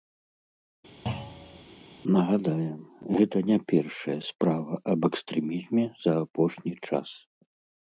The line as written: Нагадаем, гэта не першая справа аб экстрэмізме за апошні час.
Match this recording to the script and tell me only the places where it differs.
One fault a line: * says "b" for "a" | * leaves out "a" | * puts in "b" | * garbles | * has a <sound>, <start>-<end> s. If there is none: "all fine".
* has a thud, 1.1-1.6 s